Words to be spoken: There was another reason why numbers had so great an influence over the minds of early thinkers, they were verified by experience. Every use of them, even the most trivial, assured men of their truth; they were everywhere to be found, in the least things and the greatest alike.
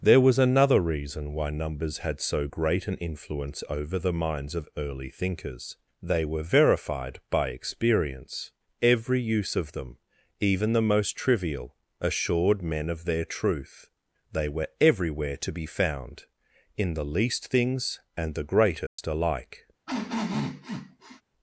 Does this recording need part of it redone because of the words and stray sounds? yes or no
yes